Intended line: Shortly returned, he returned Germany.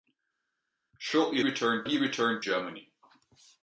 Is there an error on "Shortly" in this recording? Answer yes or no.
no